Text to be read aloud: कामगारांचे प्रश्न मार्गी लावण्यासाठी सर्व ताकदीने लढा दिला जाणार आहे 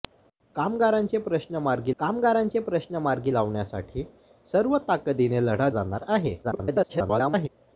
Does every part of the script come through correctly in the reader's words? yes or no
no